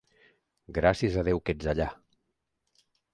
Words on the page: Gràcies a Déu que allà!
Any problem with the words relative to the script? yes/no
yes